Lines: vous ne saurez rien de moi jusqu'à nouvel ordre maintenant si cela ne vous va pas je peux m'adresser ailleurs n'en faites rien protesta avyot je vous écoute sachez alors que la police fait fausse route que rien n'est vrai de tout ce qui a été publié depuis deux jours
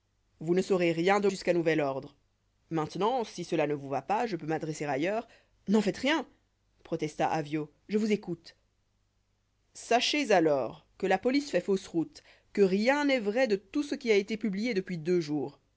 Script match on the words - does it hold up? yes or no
no